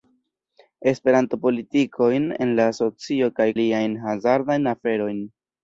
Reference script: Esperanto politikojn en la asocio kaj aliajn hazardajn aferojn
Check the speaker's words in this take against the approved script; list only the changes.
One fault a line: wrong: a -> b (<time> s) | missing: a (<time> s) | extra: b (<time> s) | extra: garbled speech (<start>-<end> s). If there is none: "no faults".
no faults